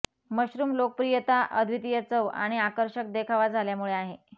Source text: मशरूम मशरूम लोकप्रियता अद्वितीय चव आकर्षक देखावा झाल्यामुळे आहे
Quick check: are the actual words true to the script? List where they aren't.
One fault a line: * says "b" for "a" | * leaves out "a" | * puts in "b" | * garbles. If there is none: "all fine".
* leaves out "मशरूम"
* puts in "आणि"